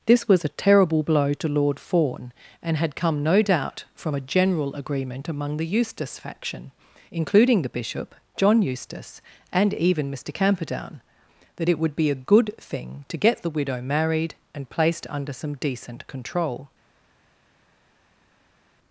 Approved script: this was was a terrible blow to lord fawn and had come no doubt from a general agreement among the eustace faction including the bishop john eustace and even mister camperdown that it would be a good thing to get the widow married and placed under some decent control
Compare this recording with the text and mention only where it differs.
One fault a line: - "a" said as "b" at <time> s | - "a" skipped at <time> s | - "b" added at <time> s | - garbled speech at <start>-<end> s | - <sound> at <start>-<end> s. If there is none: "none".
- "was" skipped at 0.4 s